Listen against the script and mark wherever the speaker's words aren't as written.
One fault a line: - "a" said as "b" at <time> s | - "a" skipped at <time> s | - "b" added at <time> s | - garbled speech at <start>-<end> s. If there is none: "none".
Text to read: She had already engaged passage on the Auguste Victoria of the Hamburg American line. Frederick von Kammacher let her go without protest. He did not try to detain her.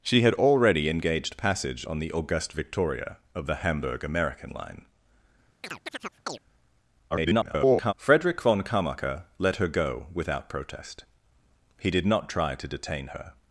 - garbled speech at 7.1-7.9 s